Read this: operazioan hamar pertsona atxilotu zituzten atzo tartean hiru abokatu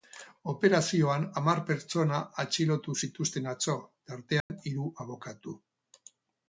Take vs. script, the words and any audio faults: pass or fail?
fail